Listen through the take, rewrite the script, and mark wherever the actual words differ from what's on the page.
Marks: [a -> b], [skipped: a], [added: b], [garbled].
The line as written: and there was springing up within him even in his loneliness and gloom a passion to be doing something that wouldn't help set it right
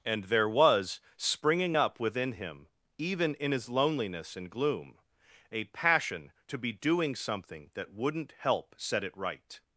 and there was springing up within him even in his loneliness and gloom a passion to be doing something that wouldn't help set it right